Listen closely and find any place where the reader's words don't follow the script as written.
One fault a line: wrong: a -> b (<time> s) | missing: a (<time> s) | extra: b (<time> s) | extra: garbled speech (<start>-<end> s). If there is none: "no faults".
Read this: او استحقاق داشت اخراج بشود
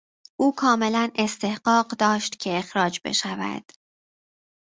extra: کاملا (0.6 s)
extra: که (2.4 s)